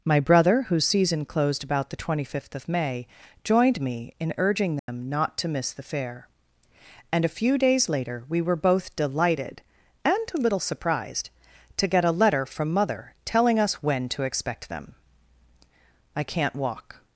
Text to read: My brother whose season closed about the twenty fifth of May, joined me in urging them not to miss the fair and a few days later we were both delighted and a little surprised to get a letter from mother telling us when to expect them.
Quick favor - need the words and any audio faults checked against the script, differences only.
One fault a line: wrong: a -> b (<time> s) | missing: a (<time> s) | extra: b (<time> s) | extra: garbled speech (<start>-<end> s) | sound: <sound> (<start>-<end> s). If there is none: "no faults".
sound: dropout (4.8-4.9 s)
extra: I can't walk (16.1 s)